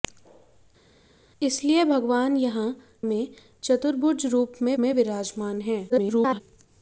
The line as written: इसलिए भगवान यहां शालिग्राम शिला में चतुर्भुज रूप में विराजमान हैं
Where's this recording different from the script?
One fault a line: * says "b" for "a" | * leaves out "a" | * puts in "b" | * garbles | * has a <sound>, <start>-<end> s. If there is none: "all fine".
* leaves out "शालिग्राम शिला"
* puts in "में"
* garbles